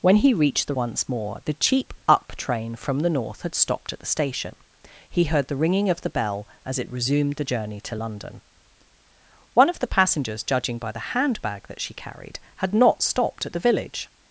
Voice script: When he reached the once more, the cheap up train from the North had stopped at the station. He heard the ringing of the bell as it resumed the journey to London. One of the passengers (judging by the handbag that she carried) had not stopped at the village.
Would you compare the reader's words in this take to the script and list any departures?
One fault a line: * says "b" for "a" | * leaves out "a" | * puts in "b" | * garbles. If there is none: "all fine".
all fine